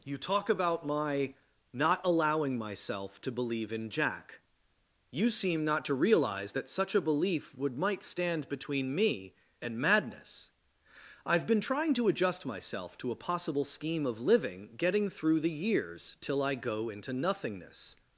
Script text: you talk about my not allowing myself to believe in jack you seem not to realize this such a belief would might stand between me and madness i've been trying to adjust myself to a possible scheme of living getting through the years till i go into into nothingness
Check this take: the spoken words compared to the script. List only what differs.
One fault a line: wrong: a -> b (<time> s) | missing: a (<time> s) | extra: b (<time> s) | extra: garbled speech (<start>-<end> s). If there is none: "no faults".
wrong: this -> that (6.5 s)
missing: into (17.1 s)